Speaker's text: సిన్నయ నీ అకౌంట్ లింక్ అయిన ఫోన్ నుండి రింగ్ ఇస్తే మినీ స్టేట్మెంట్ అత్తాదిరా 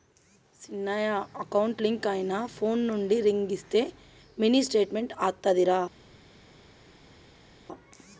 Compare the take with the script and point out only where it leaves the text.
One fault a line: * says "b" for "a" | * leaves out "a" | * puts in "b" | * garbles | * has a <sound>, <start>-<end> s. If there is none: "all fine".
* leaves out "నీ"